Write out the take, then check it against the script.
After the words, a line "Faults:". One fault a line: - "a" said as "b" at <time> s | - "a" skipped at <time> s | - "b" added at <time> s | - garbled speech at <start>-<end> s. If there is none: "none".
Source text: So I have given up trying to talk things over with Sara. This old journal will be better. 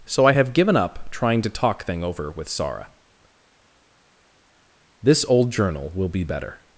So I have given up trying to talk thing over with Sara. This old journal will be better.
Faults:
- "things" said as "thing" at 1.8 s